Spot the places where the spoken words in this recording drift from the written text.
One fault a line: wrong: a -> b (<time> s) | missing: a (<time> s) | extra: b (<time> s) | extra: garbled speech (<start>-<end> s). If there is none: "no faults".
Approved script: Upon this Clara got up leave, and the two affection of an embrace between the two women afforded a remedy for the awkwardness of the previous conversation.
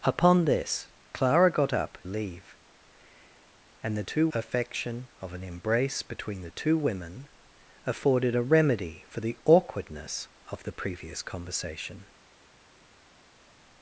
no faults